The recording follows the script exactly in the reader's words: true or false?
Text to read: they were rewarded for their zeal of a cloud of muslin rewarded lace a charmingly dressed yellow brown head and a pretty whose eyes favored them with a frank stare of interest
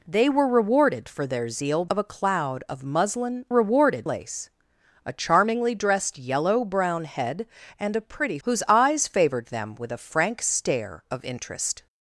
true